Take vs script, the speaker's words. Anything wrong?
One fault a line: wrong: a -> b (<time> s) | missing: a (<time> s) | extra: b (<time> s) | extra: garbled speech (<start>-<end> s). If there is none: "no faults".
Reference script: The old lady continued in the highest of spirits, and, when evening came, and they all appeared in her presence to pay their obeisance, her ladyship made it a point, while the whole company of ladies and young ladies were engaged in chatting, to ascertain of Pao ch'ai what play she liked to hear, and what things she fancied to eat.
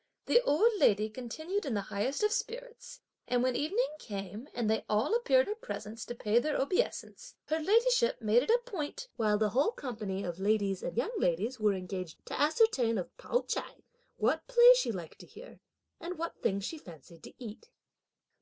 missing: in (5.5 s)
missing: in chatting (12.2 s)